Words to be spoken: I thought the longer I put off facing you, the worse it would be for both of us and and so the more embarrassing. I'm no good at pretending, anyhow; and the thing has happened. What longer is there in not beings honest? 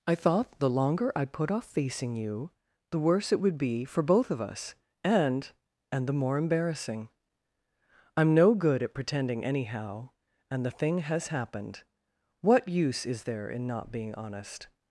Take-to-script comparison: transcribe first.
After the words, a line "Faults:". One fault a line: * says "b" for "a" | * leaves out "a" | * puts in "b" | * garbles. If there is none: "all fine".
I thought the longer I put off facing you, the worse it would be for both of us and and the more embarrassing. I'm no good at pretending, anyhow; and the thing has happened. What use is there in not being honest?
Faults:
* leaves out "so"
* says "use" for "longer"
* says "being" for "beings"